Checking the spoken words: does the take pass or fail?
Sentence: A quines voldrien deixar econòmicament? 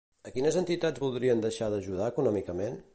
fail